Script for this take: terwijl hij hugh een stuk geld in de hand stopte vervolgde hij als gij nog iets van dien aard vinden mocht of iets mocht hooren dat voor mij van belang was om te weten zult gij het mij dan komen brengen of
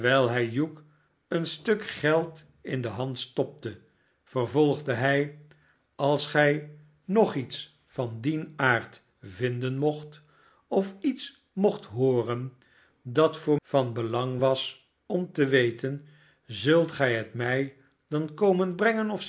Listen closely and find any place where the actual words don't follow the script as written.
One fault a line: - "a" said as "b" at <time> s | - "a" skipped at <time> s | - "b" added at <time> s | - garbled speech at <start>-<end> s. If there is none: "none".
- "mij" skipped at 13.6 s